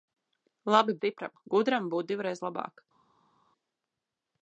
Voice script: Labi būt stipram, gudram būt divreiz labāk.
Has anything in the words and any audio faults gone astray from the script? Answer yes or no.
yes